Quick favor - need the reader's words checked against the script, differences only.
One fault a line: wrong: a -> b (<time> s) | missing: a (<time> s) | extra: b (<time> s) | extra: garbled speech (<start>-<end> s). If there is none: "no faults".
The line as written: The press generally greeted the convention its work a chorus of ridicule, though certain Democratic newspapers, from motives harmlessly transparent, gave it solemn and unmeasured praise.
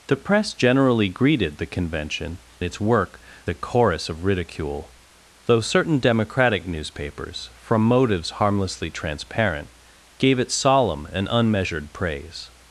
no faults